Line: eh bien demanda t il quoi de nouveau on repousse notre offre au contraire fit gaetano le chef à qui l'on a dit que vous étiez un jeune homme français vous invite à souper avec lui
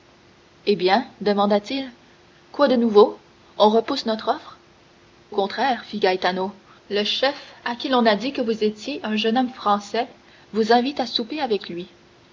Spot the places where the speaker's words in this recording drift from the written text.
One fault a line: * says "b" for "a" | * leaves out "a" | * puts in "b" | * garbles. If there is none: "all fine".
* leaves out "au"